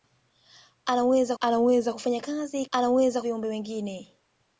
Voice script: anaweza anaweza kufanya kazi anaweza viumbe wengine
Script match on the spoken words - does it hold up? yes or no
yes